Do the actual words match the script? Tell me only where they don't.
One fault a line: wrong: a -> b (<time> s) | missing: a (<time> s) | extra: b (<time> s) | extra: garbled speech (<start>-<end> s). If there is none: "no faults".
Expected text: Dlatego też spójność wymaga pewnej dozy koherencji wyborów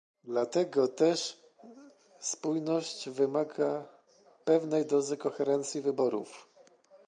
no faults